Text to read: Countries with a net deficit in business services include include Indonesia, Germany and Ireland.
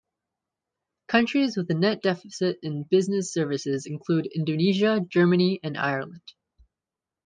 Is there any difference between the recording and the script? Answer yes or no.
yes